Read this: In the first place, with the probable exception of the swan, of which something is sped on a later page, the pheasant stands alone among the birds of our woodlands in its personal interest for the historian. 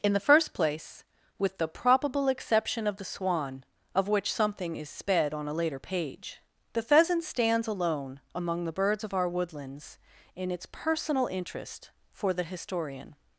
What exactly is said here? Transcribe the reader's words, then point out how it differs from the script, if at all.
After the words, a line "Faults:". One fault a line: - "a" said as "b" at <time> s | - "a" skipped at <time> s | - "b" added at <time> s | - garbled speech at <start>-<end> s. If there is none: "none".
In the first place, with the probable exception of the swan, of which something is sped on a later page, the pheasant stands alone among the birds of our woodlands in its personal interest for the historian.
Faults:
none